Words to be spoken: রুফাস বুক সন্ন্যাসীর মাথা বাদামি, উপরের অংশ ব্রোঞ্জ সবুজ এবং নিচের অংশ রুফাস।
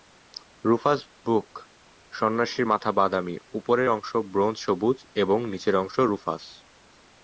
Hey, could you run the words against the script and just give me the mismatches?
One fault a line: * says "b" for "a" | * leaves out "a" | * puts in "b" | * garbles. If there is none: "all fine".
all fine